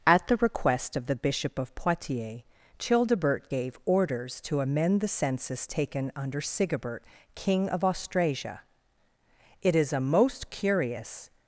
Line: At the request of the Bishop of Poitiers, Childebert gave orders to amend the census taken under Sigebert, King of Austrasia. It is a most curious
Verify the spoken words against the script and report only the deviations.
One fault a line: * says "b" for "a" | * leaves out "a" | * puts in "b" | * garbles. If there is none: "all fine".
all fine